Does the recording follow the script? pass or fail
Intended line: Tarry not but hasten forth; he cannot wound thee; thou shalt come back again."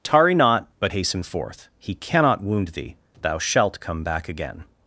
pass